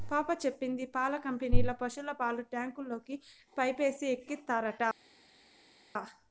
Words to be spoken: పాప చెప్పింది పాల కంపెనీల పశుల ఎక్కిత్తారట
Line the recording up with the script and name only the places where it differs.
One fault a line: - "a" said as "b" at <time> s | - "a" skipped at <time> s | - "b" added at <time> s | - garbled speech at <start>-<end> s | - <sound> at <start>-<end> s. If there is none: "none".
- "పాలు ట్యాంకుల్లోకి పైపేసి" added at 2.2 s